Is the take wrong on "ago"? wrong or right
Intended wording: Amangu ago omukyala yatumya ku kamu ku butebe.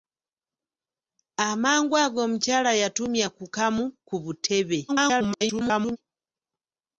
right